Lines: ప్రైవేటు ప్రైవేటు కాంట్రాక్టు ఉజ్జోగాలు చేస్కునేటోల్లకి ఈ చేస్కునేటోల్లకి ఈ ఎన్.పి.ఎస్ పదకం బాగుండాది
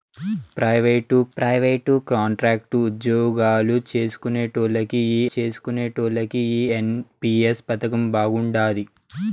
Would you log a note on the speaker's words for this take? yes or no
no